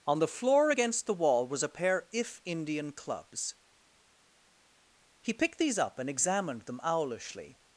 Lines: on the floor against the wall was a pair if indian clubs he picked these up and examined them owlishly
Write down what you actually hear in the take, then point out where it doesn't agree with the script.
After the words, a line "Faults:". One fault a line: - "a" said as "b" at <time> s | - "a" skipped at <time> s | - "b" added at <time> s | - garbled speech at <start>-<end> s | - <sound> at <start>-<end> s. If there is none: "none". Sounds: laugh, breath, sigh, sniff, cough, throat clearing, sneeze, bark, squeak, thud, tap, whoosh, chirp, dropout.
on the floor against the wall was a pair if indian clubs he picked these up and examined them owlishly
Faults:
none